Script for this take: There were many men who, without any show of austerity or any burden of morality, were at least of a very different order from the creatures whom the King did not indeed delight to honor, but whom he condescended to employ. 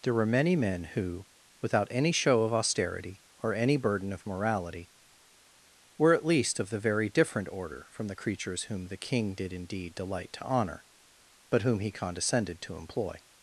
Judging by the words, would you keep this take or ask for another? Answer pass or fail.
fail